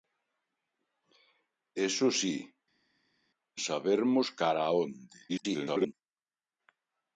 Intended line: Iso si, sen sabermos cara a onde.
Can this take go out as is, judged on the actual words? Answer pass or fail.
fail